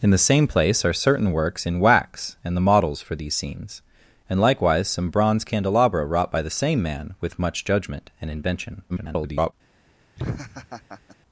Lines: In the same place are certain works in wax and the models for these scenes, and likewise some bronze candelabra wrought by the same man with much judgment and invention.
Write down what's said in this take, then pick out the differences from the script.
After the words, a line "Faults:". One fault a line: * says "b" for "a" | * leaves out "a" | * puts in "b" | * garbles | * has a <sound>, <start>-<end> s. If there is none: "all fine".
In the same place are certain works in wax and the models for these scenes, and likewise some bronze candelabra wrought by the same man with much judgment and invention. [garbled]
Faults:
* garbles
* has a laugh, 10.2-11.2 s